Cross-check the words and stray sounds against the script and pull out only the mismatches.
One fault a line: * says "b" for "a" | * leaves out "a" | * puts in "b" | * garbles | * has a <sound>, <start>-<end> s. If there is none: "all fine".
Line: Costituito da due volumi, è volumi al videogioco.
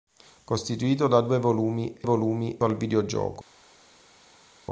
all fine